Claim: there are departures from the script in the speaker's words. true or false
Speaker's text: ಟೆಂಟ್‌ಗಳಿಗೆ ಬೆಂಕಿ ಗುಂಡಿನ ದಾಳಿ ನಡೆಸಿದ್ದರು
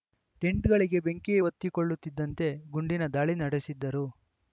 true